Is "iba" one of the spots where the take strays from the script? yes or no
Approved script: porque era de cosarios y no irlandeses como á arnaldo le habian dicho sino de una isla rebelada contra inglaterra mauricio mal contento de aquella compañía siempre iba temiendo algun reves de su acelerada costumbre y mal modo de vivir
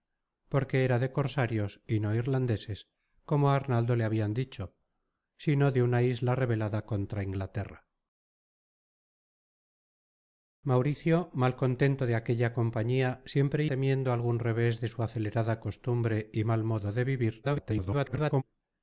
yes